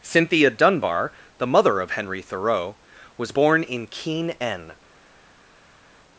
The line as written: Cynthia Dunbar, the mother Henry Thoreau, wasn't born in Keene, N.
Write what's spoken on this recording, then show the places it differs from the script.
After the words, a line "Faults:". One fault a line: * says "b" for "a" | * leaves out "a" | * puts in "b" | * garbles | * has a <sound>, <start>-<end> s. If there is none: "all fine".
Cynthia Dunbar, the mother of Henry Thoreau, was born in Keene, N.
Faults:
* puts in "of"
* says "was" for "wasn't"